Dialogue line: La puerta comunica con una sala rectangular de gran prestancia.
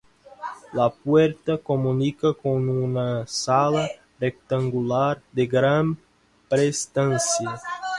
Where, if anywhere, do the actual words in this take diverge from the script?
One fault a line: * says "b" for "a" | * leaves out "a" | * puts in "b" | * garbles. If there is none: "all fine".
all fine